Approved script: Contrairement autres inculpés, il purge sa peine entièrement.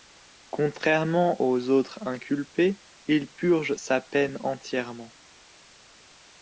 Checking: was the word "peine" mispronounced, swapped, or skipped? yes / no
no